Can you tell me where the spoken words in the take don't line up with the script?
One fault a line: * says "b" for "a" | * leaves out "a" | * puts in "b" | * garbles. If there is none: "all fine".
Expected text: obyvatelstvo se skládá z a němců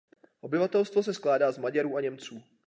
* puts in "maďarů"